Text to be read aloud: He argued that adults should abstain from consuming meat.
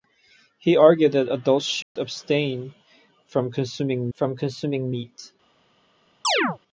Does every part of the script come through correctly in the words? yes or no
no